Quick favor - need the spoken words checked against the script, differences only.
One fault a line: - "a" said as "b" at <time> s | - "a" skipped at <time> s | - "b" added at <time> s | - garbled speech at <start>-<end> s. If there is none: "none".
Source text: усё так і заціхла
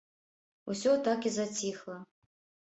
none